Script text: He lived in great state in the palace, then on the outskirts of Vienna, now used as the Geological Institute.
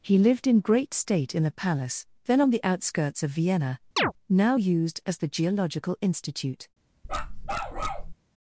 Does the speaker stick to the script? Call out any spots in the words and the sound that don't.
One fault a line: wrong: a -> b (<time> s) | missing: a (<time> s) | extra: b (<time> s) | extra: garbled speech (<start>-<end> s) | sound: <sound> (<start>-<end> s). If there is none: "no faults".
sound: chirp (4.0-4.1 s)
sound: bark (7.0-8.1 s)